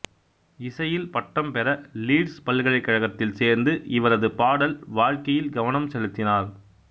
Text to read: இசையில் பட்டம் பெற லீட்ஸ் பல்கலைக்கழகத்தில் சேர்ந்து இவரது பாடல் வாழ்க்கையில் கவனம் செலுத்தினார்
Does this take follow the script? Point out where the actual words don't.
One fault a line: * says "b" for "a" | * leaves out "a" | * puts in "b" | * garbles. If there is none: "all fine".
all fine